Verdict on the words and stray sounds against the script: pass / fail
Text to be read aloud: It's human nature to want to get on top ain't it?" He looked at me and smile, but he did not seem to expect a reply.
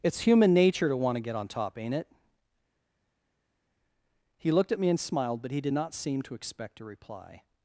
fail